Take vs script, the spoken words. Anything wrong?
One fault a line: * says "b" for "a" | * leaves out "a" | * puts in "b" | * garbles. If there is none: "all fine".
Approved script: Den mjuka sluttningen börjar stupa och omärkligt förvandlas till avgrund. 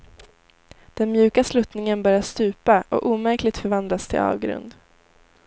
all fine